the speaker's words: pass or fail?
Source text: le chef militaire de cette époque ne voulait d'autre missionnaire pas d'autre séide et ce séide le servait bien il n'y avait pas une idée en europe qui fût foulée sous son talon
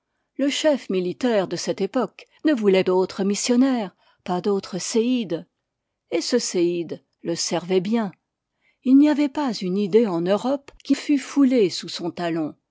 pass